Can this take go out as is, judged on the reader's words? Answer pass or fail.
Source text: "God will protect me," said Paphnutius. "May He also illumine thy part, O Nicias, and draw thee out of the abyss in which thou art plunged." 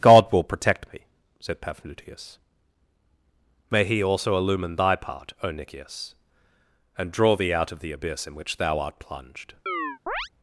pass